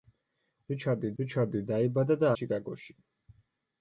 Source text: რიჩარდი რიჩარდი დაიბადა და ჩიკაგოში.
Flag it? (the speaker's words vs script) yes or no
no